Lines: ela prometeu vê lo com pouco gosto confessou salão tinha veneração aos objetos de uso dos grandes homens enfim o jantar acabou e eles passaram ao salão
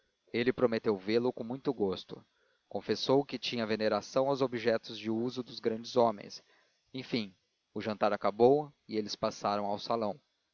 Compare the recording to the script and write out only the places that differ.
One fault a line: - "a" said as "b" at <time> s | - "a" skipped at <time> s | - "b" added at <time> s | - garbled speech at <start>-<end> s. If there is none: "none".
- "ela" said as "ele" at 0.3 s
- "pouco" said as "muito" at 1.4 s
- "salão" said as "que" at 3.2 s